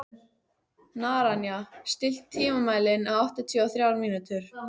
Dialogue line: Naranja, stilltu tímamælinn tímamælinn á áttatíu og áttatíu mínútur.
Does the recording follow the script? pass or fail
fail